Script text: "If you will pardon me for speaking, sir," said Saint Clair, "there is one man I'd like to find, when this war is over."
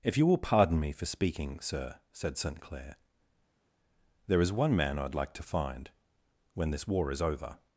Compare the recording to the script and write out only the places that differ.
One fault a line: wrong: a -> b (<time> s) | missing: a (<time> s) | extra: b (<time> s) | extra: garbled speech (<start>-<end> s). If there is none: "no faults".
no faults